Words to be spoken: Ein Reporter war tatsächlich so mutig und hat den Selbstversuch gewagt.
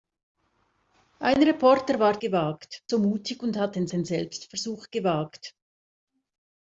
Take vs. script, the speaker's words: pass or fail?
fail